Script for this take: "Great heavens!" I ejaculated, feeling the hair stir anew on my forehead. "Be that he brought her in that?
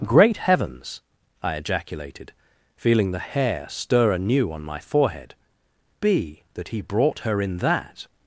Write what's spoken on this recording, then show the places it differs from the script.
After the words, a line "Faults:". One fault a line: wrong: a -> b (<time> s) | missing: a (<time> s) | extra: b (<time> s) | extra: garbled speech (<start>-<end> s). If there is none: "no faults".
"Great heavens!" I ejaculated, feeling the hair stir anew on my forehead. "Be that he brought her in that?
Faults:
no faults